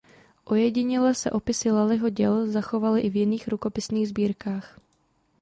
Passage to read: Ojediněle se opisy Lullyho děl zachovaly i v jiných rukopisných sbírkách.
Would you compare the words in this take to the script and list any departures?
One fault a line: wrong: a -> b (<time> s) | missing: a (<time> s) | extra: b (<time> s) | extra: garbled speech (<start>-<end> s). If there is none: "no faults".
no faults